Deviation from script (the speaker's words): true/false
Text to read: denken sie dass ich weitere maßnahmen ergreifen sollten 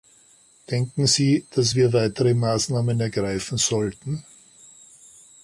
true